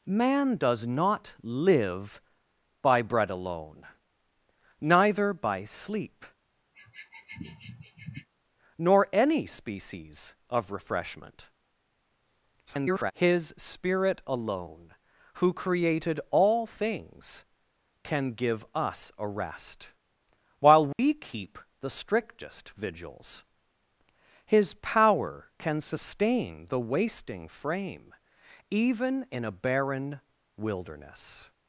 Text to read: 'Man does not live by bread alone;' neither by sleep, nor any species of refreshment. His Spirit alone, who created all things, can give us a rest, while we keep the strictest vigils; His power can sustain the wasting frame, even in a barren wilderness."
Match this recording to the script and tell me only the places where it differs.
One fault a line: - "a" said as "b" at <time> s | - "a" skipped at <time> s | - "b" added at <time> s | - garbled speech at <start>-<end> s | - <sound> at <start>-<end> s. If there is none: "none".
- sniff at 6.7-8.3 s
- garbled speech at 12.7-13.1 s
- dropout at 20.9-21.0 s